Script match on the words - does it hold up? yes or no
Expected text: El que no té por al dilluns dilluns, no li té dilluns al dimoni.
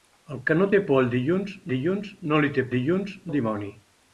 yes